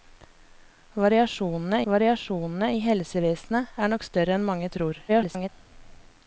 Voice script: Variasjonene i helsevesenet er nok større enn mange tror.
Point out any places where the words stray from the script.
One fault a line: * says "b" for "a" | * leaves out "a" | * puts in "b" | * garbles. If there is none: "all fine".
* puts in "variasjonene"
* garbles